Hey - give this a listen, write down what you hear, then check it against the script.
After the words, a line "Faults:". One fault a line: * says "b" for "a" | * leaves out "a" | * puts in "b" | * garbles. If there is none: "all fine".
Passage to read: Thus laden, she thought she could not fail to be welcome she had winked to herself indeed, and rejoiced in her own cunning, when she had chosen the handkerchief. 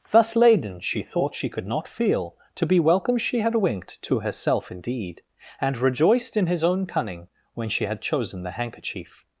Thus laden, she thought she could not feel to be welcome she had winked to herself indeed, and rejoiced in his own cunning, when she had chosen the handkerchief.
Faults:
* says "feel" for "fail"
* says "his" for "her"